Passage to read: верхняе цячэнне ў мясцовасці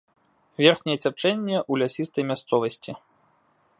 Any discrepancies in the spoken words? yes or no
yes